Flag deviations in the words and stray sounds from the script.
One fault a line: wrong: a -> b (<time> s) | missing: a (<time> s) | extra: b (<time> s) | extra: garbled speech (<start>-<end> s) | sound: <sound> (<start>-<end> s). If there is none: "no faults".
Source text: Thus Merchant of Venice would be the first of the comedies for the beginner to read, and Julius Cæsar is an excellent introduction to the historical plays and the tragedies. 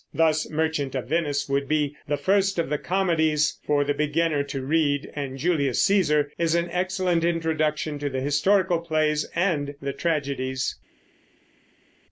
no faults